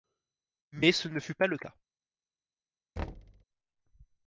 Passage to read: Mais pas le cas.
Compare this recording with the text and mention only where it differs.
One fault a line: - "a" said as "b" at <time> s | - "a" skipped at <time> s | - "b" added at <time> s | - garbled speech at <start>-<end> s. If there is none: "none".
- "ce ne fut" added at 0.9 s